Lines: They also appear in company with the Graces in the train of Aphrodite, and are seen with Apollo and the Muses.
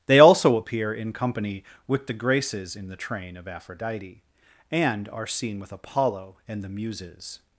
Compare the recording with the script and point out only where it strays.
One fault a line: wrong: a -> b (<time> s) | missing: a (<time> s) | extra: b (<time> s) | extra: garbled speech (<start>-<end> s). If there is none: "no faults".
no faults